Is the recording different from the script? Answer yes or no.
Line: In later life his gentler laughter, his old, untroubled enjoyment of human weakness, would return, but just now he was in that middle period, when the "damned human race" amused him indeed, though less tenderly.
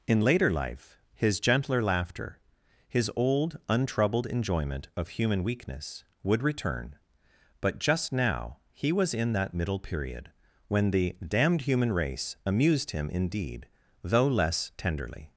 no